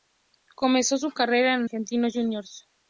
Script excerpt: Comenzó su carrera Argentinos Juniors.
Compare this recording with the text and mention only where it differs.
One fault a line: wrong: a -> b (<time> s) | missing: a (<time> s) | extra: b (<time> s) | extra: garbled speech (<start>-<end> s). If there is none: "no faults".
extra: en (1.5 s)